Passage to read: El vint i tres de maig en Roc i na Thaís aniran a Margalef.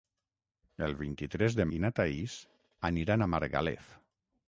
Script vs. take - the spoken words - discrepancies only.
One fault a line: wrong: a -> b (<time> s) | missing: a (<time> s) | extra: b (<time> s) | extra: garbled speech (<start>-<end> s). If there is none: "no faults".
missing: maig en Roc (1.7 s)